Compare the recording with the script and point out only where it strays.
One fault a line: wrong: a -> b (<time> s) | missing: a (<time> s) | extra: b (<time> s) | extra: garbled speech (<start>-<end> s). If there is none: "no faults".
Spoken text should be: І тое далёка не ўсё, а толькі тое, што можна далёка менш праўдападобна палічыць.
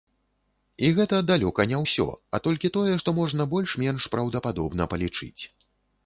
wrong: тое -> гэта (1.0 s)
wrong: далёка -> больш (3.5 s)